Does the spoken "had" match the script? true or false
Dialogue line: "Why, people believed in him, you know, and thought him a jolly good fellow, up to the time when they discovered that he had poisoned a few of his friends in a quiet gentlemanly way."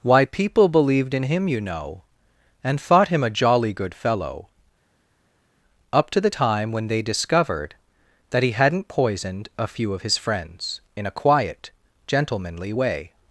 false